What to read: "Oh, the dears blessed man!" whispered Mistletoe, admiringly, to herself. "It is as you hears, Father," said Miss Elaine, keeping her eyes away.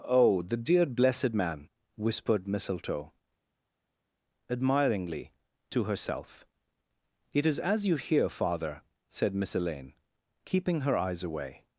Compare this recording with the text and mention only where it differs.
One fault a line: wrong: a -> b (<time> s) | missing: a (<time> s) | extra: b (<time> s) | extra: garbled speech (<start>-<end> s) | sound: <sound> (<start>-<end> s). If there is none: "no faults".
wrong: dears -> dear (0.6 s)
wrong: hears -> hear (8.0 s)